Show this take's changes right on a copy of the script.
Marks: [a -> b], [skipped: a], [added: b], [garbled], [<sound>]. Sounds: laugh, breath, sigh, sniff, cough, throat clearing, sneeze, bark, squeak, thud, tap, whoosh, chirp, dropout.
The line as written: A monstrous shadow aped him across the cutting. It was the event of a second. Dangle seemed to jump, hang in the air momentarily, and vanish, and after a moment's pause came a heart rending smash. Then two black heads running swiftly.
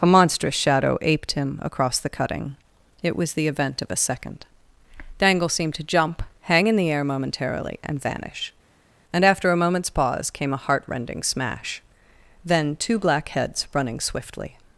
A monstrous shadow aped him across the cutting. It was the event of a second. Dangle seemed to jump, hang in the air momentarily, and vanish, and after a moment's pause came a heart rending smash. Then two black heads running swiftly.